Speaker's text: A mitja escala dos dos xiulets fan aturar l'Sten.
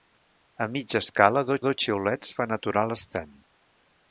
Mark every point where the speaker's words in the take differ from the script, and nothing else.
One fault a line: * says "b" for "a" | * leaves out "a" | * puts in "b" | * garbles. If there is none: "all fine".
all fine